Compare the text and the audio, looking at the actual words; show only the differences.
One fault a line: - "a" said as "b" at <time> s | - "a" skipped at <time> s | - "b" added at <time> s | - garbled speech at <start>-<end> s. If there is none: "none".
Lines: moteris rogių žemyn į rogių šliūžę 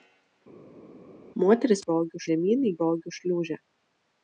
none